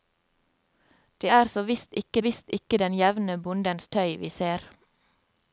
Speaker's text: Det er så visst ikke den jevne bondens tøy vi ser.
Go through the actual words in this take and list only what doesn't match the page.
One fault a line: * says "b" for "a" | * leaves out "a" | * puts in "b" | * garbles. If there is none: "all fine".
* puts in "visst ikke"